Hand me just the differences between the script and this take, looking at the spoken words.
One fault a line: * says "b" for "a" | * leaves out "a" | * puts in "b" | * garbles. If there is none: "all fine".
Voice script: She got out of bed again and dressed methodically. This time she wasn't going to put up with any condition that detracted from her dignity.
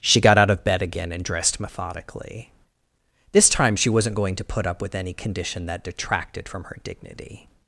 all fine